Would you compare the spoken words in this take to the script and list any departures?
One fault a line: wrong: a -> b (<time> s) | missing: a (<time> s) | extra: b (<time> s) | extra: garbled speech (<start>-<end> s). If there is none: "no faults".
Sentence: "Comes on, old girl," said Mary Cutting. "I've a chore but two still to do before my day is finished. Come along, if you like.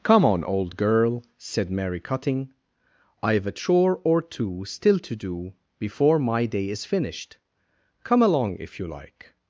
wrong: Comes -> Come (0.0 s)
wrong: but -> or (4.0 s)